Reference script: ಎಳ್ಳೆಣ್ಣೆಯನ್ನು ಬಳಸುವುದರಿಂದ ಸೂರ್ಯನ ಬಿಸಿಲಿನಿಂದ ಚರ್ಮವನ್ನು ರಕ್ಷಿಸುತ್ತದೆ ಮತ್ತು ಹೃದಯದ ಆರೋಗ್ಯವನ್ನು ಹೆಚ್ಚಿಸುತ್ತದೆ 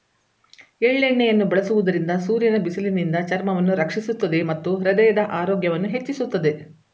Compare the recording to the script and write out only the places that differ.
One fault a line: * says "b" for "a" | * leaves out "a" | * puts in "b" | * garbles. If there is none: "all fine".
all fine